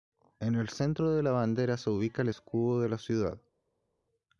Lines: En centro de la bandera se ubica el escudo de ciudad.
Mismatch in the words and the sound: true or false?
true